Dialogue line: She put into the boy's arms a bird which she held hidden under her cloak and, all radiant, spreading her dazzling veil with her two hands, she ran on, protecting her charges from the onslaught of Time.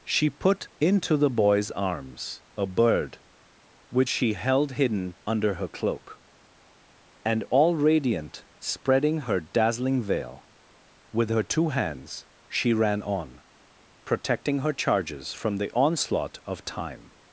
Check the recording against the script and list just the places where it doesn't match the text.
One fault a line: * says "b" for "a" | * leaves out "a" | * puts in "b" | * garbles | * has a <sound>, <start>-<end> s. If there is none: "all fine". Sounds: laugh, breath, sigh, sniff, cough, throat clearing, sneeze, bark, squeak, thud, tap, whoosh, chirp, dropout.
all fine